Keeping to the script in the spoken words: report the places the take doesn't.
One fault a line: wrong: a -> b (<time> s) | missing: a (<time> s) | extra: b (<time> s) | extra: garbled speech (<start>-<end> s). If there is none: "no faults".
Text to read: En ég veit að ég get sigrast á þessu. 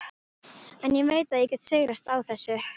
no faults